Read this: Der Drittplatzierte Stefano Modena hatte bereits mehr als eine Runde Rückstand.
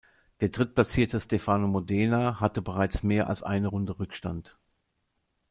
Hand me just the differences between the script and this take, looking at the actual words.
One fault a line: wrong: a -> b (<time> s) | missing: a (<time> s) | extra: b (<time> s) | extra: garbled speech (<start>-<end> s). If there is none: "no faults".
no faults